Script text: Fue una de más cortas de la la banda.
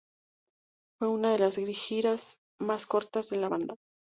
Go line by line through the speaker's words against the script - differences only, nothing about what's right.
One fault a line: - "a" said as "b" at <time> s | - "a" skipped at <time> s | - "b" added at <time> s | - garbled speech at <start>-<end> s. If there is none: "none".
- "las giras" added at 1.4 s
- "la" skipped at 3.5 s